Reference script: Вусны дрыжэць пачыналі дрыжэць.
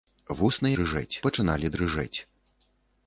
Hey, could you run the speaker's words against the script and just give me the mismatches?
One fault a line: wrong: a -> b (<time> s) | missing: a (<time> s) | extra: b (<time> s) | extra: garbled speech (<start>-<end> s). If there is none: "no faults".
no faults